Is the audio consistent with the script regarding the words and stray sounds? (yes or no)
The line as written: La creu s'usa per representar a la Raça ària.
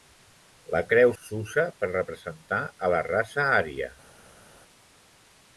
yes